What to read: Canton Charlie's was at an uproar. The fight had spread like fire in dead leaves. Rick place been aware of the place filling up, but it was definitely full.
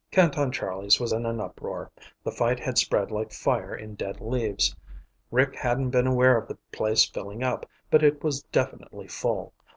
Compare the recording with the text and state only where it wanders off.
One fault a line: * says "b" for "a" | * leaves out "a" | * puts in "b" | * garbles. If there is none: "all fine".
* says "in" for "at"
* says "hadn't" for "place"